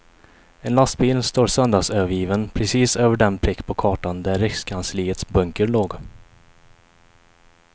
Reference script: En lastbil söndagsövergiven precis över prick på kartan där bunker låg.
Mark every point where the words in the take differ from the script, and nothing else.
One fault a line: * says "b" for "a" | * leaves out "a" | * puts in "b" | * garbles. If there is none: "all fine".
* puts in "står"
* puts in "den"
* puts in "rikskansliets"